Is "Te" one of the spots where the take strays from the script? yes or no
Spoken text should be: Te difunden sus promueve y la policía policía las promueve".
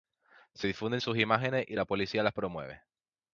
yes